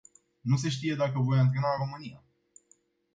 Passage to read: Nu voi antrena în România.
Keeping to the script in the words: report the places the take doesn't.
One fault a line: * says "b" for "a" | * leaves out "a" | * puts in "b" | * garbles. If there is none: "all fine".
* puts in "se știe dacă"